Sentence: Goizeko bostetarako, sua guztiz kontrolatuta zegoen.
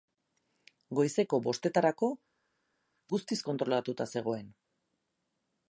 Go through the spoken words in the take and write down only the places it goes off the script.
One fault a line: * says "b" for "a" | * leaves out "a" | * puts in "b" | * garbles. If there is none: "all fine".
* leaves out "sua"